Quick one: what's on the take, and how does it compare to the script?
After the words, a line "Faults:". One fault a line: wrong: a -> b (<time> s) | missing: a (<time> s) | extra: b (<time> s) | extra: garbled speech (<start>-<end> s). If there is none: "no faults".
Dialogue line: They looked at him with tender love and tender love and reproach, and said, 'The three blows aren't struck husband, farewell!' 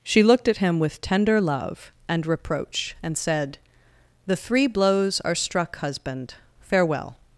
She looked at him with tender love and reproach, and said, 'The three blows are struck husband, farewell!'
Faults:
wrong: They -> She (0.0 s)
missing: tender love and (2.2 s)
wrong: aren't -> are (5.2 s)